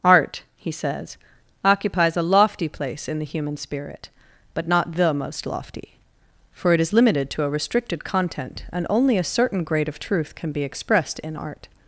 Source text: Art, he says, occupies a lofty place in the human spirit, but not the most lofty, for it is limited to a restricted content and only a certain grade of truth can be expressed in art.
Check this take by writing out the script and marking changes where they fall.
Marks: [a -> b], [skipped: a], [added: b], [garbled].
Art, he says, occupies a lofty place in the human spirit, but not the most lofty, for it is limited to a restricted content and only a certain grade of truth can be expressed in art.